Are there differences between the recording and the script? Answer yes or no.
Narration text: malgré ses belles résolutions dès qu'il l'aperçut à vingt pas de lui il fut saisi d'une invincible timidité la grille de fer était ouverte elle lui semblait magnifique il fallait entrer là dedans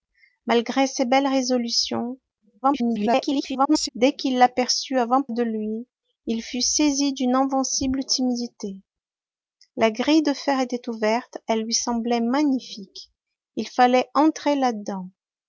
yes